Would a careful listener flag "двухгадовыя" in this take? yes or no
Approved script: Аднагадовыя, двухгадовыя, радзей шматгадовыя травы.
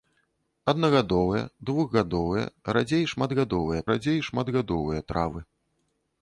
no